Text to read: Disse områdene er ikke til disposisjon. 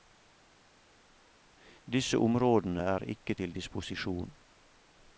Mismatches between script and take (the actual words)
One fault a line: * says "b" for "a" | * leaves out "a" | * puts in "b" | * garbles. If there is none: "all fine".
all fine